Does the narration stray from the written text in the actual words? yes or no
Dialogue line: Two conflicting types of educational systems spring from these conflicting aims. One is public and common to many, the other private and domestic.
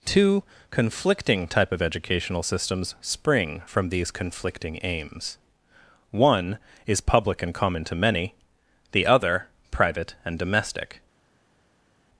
yes